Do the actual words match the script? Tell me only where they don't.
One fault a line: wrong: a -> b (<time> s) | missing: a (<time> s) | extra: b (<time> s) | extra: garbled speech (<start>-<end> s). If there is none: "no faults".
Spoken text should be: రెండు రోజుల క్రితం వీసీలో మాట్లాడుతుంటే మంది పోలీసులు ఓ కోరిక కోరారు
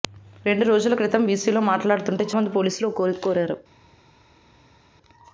no faults